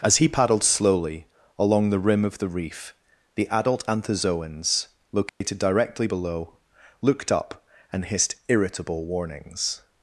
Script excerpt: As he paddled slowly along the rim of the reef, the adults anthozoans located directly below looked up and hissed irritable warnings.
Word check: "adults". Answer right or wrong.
wrong